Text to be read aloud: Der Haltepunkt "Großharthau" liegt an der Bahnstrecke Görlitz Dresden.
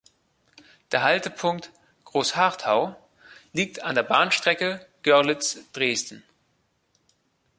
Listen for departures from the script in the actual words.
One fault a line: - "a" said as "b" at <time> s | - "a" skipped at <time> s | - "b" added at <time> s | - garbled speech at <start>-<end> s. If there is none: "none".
none